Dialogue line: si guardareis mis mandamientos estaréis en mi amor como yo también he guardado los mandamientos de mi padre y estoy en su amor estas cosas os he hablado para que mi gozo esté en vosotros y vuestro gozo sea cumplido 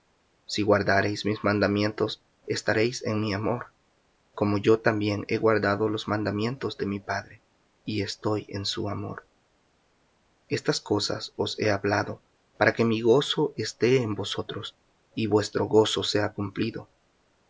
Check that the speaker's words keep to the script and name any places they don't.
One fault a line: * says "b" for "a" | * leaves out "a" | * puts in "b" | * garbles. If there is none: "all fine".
all fine